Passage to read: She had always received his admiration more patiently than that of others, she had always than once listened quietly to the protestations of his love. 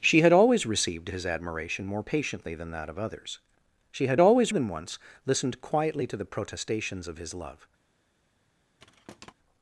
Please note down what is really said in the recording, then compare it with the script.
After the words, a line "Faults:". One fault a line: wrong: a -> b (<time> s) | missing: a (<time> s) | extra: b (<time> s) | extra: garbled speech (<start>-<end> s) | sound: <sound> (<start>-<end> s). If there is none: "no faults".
She had always received his admiration more patiently than that of others, she had always than once listened quietly to the protestations of his love.
Faults:
sound: thud (8.8-9.3 s)